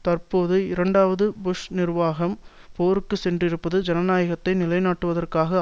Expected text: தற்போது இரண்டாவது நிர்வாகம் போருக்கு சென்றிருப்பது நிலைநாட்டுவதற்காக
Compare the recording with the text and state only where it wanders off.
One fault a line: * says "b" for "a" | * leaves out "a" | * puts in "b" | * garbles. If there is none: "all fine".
* puts in "புஷ்"
* puts in "ஜனநாயகத்தை"